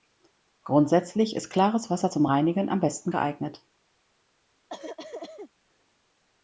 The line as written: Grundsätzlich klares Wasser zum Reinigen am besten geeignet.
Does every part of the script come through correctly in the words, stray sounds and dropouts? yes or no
no